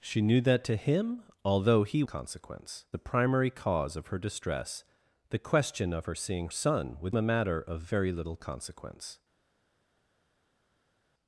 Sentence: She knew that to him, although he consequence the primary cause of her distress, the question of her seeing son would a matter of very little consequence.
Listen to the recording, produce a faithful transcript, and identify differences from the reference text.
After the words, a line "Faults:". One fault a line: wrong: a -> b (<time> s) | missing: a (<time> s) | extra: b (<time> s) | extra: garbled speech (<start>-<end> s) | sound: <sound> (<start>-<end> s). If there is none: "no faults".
She knew that to him, although he consequence the primary cause of her distress, the question of her seeing son would a matter of very little consequence.
Faults:
no faults